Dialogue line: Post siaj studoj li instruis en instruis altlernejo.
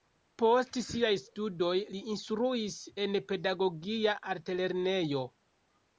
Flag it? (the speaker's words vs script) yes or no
yes